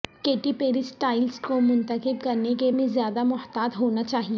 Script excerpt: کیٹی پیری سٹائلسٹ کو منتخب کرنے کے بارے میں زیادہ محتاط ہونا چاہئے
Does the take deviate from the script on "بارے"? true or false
true